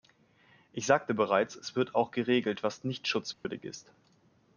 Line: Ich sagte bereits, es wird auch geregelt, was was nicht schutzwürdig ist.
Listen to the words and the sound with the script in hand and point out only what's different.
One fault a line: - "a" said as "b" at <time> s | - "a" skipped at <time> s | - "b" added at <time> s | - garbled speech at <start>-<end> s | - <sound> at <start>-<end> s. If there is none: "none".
- "was" skipped at 2.9 s
- dropout at 3.3-3.4 s